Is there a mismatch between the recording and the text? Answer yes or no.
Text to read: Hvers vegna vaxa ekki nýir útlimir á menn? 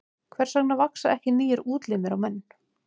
no